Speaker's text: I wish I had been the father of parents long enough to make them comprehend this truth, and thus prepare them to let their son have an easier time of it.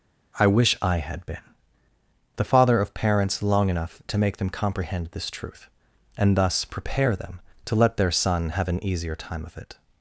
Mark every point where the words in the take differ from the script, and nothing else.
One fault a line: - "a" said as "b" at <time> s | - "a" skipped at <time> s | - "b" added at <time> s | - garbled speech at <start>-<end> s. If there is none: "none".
none